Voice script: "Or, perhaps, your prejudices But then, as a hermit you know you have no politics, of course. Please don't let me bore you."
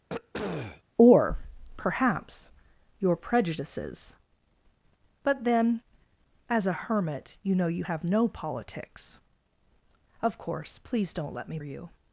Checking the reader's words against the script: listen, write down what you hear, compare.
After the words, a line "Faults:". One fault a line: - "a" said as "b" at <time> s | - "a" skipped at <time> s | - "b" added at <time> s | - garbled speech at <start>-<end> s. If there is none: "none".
"Or, perhaps, your prejudices But then, as a hermit you know you have no politics, of course. Please don't let me you."
Faults:
- "bore" skipped at 11.6 s